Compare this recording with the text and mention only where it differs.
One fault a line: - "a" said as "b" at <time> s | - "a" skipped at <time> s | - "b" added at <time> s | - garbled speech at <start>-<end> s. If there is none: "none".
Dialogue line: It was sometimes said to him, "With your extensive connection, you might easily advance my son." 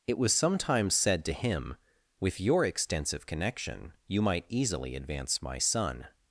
none